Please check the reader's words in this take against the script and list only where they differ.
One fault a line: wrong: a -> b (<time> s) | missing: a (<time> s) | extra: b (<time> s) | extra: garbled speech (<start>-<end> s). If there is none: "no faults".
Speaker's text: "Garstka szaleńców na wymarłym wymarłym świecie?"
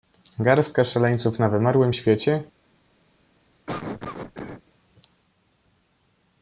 missing: wymarłym (1.9 s)